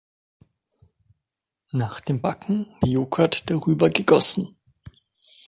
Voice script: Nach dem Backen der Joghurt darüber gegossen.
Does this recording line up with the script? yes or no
yes